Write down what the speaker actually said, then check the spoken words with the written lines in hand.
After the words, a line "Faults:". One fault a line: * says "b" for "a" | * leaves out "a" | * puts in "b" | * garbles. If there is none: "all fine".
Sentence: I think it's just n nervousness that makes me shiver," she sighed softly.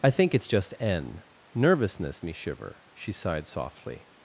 I think it's just n nervousness me shiver," she sighed softly.
Faults:
* leaves out "that makes"